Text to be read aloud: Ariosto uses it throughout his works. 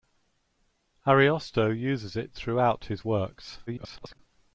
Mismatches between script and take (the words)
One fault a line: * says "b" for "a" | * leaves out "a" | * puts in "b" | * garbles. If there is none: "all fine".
* garbles